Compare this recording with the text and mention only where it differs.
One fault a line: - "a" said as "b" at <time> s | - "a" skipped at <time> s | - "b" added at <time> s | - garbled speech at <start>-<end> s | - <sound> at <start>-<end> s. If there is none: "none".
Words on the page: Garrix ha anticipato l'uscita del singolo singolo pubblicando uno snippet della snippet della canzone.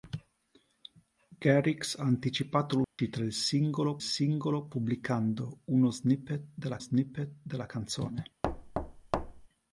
- dropout at 2.8-3.0 s
- thud at 8.4-9.5 s